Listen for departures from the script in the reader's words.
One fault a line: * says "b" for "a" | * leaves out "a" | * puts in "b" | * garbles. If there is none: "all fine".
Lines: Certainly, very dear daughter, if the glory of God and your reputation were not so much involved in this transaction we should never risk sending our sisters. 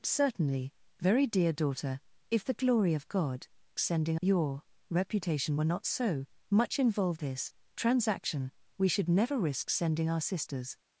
* says "sending" for "and"
* leaves out "in"